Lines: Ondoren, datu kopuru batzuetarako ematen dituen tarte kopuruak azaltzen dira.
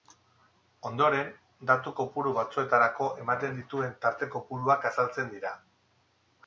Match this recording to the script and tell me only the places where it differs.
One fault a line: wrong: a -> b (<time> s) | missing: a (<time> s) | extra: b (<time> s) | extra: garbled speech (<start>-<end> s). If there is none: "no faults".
no faults